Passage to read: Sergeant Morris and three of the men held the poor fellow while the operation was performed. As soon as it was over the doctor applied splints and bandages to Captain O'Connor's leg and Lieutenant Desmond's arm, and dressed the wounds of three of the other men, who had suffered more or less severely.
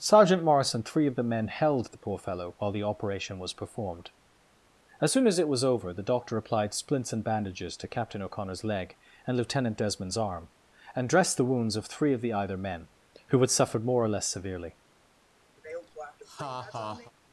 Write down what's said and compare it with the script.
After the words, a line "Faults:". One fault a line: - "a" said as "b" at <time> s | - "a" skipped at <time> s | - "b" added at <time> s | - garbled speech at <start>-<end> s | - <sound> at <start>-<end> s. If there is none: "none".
Sergeant Morris and three of the men held the poor fellow while the operation was performed. As soon as it was over the doctor applied splints and bandages to Captain O'Connor's leg and Lieutenant Desmond's arm, and dressed the wounds of three of the either men, who had suffered more or less severely.
Faults:
- "other" said as "either" at 12.3 s
- laugh at 15.6-17.1 s